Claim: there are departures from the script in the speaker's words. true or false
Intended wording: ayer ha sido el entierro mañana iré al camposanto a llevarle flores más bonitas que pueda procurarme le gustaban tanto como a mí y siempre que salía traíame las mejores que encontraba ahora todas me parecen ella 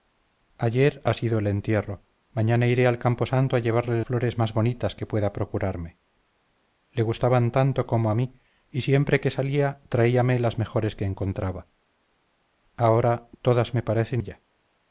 false